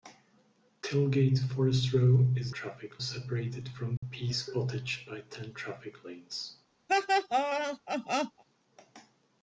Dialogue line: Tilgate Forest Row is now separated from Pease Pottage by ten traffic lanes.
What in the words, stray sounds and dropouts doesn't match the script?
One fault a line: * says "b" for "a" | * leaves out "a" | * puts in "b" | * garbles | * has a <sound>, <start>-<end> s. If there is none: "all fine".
* says "traffic" for "now"
* has a dropout, 4.0-4.0 s
* has a laugh, 6.9-8.4 s